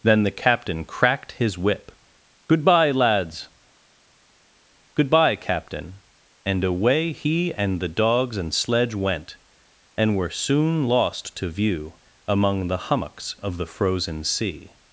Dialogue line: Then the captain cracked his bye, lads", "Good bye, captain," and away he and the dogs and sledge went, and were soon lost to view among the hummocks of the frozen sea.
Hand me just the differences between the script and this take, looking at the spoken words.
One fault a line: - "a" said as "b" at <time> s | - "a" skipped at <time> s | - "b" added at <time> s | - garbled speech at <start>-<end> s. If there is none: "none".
- "whip Good" added at 1.6 s